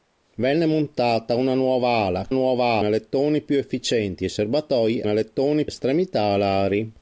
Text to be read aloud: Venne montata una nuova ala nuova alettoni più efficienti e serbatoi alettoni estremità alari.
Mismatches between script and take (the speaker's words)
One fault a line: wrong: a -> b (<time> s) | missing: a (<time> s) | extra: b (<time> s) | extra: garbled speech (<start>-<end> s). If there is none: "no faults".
no faults